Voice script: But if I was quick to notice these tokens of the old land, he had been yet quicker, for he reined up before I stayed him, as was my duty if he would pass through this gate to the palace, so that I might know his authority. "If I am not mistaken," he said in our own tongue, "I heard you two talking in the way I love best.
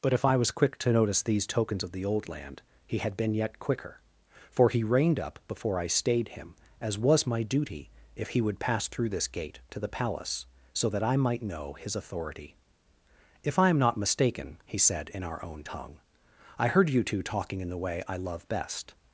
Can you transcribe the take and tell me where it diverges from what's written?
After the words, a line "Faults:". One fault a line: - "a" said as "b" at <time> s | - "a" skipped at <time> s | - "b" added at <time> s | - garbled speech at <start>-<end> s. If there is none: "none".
But if I was quick to notice these tokens of the old land, he had been yet quicker, for he reined up before I stayed him, as was my duty if he would pass through this gate to the palace, so that I might know his authority. "If I am not mistaken," he said in our own tongue, "I heard you two talking in the way I love best.
Faults:
none